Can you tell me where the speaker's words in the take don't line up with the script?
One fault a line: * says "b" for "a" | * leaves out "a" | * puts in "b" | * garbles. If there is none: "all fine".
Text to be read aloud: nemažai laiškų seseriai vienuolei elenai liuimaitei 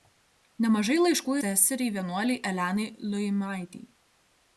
all fine